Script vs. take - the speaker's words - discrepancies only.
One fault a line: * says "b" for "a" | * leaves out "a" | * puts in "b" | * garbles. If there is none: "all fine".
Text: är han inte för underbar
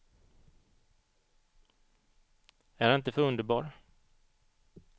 all fine